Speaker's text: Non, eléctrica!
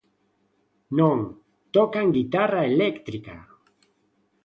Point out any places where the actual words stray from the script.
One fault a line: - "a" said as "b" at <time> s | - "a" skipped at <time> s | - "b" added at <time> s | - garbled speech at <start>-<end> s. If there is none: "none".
- "tocan guitarra" added at 1.8 s